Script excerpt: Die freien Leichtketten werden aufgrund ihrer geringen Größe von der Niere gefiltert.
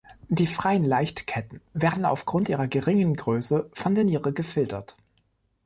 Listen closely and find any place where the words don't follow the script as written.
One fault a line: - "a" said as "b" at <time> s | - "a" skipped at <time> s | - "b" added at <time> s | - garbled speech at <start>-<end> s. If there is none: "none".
none